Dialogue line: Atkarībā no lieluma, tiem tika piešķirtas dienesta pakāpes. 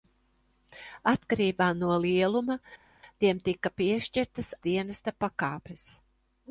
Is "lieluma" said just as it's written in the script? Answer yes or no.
yes